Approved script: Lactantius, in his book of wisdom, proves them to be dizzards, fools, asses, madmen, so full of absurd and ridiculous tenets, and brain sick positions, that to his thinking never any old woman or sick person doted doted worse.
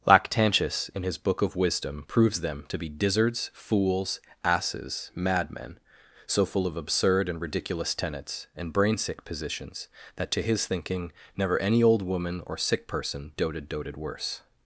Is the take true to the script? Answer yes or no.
yes